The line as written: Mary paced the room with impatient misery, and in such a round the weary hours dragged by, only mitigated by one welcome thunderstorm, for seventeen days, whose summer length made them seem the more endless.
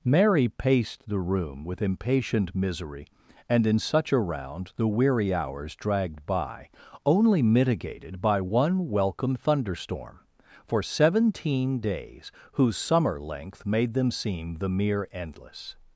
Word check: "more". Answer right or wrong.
wrong